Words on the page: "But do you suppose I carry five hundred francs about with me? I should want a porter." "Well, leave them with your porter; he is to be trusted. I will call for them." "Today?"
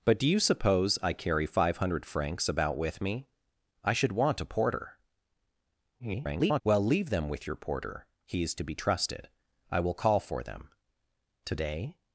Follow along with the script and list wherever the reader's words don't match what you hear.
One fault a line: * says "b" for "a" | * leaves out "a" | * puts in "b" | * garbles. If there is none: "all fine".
* garbles